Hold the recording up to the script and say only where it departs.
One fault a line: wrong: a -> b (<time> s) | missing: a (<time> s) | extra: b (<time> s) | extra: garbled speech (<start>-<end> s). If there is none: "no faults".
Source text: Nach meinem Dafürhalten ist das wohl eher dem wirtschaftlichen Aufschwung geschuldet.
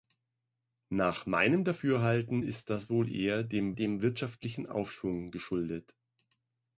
extra: dem (3.7 s)